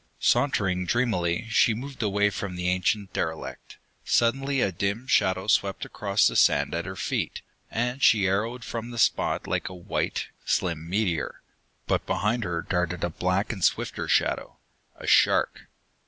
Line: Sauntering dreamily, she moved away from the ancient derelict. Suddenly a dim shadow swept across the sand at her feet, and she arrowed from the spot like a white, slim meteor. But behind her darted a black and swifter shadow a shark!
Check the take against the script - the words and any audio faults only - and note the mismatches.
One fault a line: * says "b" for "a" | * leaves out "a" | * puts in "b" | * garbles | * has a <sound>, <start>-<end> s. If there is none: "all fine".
all fine